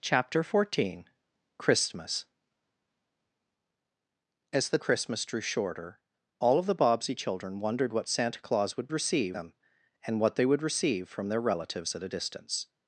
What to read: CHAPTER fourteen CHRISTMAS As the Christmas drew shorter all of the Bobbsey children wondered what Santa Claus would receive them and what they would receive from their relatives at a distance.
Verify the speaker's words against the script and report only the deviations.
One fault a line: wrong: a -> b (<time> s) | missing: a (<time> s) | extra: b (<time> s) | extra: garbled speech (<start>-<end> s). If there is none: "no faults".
no faults